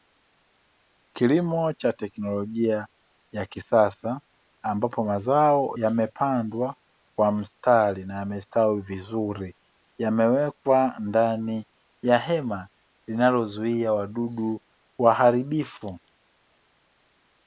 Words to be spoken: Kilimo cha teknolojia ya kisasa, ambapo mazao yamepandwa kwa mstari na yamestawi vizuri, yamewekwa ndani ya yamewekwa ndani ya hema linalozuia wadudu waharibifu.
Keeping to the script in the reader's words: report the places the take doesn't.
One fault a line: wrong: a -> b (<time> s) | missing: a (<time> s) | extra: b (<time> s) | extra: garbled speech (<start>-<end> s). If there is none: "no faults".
missing: yamewekwa ndani ya (12.2 s)